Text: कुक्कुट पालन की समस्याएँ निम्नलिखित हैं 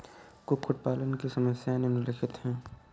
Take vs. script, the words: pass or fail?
pass